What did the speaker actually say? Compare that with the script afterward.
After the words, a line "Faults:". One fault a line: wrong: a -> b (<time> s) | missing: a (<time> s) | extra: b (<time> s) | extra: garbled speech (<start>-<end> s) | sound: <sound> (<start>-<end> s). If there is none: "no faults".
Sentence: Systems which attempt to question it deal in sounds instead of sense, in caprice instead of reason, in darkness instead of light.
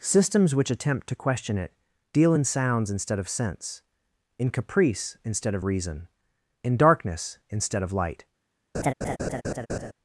Systems which attempt to question it deal in sounds instead of sense, in caprice instead of reason, in darkness instead of light.
Faults:
sound: laugh (8.7-9.9 s)